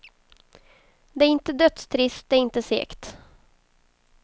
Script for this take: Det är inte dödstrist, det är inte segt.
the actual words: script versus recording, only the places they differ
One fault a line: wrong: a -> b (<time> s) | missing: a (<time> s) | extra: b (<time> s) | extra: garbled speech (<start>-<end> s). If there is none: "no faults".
no faults